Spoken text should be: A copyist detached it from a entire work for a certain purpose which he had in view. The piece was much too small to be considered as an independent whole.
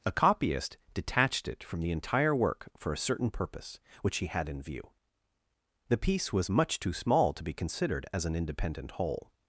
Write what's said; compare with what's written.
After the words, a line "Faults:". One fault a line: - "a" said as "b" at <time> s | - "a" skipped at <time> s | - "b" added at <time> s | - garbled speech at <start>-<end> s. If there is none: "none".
A copyist detached it from the entire work for a certain purpose which he had in view. The piece was much too small to be considered as an independent whole.
Faults:
- "a" said as "the" at 1.8 s